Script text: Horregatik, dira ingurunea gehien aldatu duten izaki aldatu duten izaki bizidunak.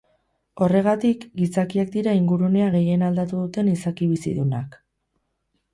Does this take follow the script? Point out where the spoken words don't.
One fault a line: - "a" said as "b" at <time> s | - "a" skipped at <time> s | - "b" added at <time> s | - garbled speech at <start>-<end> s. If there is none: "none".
- "gizakiak" added at 1.4 s
- "aldatu duten izaki" skipped at 4.1 s